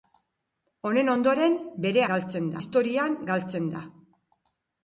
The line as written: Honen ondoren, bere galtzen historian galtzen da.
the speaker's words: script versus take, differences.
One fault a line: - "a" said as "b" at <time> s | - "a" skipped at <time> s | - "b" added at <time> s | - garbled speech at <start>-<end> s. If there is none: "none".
none